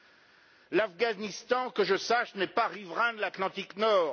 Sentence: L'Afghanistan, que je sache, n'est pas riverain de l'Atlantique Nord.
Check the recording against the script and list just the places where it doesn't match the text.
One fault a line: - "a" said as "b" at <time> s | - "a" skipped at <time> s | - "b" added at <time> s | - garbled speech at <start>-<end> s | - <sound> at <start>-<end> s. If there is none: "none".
none